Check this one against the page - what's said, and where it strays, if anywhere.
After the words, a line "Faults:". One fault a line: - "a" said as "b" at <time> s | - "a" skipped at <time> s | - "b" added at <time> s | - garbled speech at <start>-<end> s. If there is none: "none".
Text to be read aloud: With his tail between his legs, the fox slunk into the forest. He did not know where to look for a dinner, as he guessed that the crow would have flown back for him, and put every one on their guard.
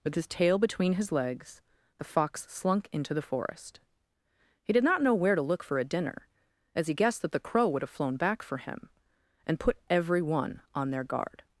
With his tail between his legs, the fox slunk into the forest. He did not know where to look for a dinner, as he guessed that the crow would have flown back for him, and put every one on their guard.
Faults:
none